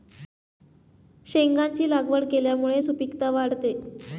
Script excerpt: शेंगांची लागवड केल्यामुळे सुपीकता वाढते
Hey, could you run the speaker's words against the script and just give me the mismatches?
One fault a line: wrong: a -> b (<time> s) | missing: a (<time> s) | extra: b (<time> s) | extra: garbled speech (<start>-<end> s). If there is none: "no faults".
no faults